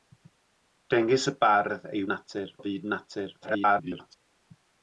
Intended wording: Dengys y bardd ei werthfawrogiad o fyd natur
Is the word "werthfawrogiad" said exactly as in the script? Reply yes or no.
no